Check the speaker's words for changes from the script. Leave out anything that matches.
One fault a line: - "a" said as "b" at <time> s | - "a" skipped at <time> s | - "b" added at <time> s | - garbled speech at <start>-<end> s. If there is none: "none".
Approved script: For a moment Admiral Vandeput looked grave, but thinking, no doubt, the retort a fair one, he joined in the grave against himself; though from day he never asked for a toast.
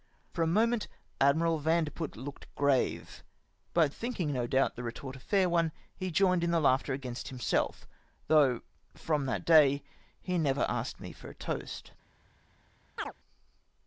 - "grave" said as "laughter" at 6.6 s
- "that" added at 9.3 s
- "me" added at 11.0 s